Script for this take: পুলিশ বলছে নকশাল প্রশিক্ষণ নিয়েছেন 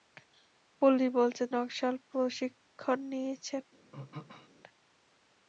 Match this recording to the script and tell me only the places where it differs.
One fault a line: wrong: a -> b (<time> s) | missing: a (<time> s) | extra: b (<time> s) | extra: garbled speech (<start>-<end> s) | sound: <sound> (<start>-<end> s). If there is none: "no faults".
sound: throat clearing (3.9-4.5 s)